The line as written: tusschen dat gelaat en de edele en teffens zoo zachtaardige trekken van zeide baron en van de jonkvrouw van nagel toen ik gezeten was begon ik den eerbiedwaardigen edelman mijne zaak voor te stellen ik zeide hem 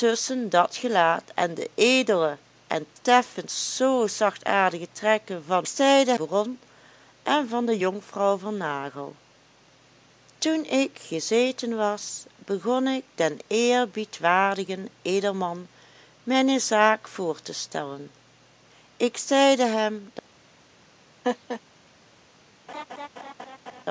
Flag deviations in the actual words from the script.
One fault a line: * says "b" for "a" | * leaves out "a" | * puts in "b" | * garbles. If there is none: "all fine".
all fine